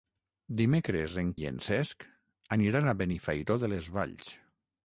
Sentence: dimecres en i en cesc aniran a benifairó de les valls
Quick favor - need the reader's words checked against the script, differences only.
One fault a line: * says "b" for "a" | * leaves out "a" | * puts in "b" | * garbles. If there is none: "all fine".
all fine